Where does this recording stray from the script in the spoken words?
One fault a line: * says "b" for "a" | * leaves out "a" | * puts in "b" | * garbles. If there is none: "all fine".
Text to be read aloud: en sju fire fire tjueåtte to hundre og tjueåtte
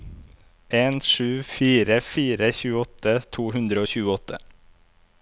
all fine